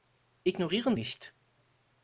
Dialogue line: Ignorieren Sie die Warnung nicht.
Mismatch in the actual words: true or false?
true